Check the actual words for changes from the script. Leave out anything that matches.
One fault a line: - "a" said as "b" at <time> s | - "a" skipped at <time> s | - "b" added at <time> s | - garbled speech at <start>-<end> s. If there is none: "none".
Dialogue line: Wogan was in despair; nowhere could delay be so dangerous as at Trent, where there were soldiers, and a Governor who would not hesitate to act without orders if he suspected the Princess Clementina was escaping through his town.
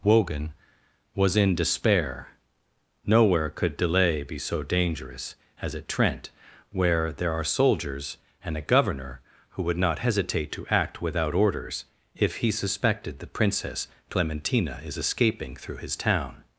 - "were" said as "are" at 7.3 s
- "was" said as "is" at 14.8 s